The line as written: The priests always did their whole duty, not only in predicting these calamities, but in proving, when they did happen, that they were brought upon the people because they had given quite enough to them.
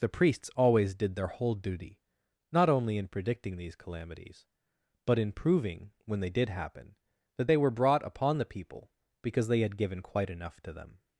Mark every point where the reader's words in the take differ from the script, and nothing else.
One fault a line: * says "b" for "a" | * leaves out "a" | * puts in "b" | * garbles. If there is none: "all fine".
all fine